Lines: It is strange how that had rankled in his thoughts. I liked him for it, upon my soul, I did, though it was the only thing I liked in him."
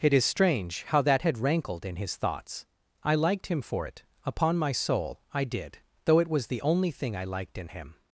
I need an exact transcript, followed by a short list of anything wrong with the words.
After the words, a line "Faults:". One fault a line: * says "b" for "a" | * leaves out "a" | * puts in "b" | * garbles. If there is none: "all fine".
It is strange how that had rankled in his thoughts. I liked him for it, upon my soul, I did, though it was the only thing I liked in him."
Faults:
all fine